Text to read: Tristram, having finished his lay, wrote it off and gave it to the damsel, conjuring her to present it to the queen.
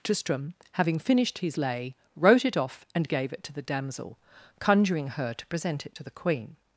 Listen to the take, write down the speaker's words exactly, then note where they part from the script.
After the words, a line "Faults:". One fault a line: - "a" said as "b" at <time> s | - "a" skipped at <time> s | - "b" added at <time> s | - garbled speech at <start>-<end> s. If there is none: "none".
Tristram, having finished his lay, wrote it off and gave it to the damsel, conjuring her to present it to the queen.
Faults:
none